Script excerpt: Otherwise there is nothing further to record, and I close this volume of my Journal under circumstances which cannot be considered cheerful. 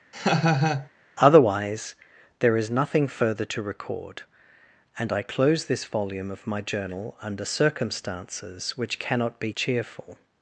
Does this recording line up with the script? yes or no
no